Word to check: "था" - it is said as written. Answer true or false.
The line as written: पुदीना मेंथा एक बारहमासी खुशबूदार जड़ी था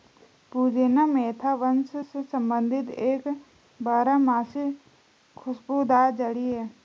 false